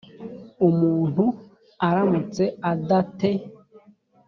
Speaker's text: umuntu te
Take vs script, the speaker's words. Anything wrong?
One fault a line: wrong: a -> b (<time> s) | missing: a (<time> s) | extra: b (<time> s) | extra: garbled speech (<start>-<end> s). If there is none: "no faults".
extra: aramutse ada (1.9 s)